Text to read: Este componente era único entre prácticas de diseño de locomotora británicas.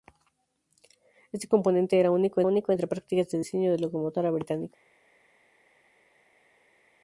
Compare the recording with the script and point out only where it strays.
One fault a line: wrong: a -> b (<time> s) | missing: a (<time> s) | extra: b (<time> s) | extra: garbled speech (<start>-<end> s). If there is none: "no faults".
extra: único (2.4 s)